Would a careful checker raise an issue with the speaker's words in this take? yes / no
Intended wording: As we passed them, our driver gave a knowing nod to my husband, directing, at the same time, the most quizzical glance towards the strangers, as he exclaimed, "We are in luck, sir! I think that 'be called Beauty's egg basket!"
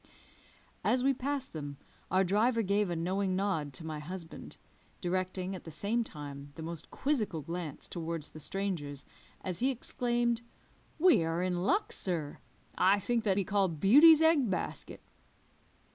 no